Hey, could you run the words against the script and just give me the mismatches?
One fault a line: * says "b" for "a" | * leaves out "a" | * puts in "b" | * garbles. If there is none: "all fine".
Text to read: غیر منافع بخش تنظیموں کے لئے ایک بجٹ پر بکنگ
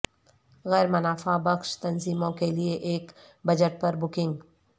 all fine